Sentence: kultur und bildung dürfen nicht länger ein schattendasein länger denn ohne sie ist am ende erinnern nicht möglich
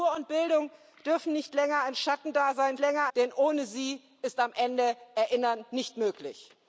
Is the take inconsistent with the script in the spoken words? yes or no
no